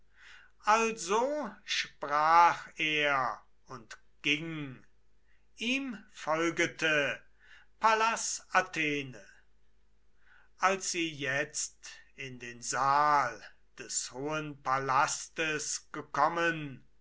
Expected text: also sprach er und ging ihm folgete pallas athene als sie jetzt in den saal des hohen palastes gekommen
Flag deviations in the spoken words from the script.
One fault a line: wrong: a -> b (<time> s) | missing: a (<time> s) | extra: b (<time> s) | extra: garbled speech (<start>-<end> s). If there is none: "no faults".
no faults